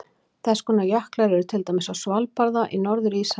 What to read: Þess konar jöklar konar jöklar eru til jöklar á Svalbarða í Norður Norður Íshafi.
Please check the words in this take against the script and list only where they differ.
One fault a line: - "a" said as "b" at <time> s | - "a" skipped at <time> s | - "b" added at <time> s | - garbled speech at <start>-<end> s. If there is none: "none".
- "konar jöklar" skipped at 1.4 s
- "jöklar" said as "dæmis" at 1.7 s
- "Norður" skipped at 3.2 s